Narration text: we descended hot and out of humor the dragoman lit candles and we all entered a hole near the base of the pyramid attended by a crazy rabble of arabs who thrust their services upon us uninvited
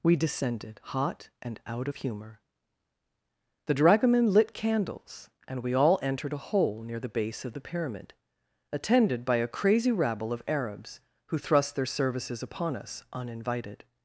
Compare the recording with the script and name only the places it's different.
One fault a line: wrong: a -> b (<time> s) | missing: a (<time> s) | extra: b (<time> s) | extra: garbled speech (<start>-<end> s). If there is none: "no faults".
no faults